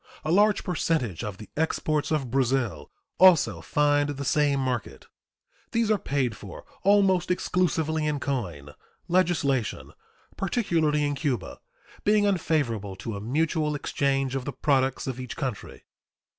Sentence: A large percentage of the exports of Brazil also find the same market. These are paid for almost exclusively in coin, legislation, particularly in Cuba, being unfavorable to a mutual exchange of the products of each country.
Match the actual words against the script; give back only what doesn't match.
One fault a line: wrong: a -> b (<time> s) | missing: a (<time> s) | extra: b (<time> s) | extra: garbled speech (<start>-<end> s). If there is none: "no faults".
no faults